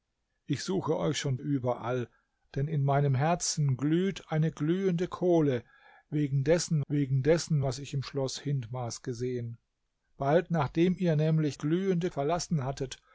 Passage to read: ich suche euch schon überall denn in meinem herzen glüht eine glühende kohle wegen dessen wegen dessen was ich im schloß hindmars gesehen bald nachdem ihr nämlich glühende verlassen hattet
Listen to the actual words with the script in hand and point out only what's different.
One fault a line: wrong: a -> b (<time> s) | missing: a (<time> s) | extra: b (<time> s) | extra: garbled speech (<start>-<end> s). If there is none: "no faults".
no faults